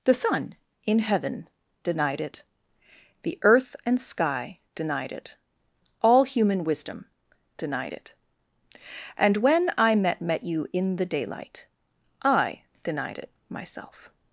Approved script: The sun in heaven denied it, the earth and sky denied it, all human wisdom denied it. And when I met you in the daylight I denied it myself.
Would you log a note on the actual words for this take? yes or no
yes